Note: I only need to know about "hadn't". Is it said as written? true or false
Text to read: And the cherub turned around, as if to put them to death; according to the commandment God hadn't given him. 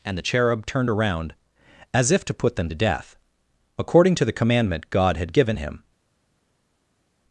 false